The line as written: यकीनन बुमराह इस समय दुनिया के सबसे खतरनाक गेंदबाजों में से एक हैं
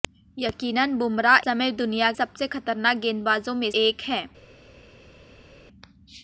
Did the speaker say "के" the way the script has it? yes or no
no